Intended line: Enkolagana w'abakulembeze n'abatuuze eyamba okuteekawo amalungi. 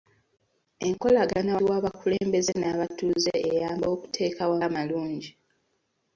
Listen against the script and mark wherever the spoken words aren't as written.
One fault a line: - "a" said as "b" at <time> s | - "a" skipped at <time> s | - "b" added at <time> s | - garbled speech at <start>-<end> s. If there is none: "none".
none